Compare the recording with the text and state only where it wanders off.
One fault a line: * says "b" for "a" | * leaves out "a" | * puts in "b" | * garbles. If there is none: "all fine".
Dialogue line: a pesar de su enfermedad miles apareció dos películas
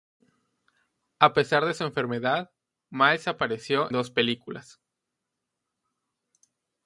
all fine